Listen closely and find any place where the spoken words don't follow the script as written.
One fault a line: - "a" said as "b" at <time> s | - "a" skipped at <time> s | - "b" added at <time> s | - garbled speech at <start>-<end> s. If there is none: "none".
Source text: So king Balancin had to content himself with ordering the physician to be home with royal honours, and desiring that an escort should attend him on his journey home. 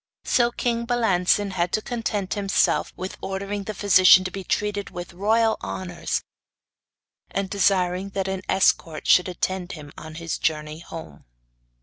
- "home" said as "treated" at 4.5 s